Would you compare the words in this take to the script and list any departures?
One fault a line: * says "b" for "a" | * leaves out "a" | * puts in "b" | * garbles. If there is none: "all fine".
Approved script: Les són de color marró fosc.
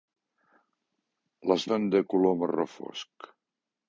all fine